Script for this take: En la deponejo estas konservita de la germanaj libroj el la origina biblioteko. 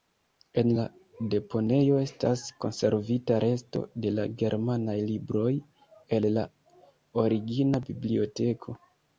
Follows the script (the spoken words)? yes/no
no